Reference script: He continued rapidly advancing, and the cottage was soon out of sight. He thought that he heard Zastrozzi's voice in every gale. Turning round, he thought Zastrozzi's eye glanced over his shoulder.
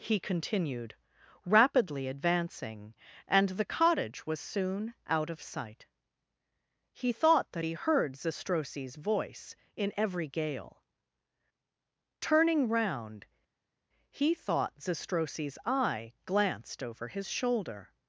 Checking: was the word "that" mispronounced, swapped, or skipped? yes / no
no